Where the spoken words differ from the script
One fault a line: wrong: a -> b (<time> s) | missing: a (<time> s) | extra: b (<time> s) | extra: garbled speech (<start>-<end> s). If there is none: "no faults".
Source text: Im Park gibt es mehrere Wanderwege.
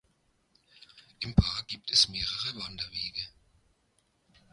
no faults